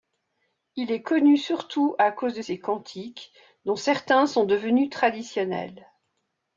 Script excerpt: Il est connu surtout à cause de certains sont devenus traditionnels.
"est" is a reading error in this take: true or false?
false